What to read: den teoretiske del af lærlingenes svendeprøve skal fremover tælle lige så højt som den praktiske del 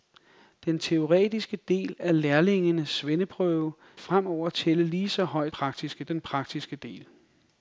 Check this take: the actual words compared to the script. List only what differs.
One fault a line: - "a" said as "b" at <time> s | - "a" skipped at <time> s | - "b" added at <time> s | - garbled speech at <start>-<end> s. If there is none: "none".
- "skal" skipped at 3.7 s
- "som" said as "praktiske" at 5.5 s